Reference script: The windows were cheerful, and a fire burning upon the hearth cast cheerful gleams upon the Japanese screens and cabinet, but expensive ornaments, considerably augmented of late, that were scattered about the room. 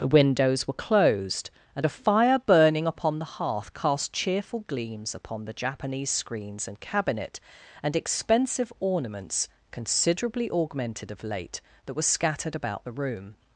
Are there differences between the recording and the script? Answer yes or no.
yes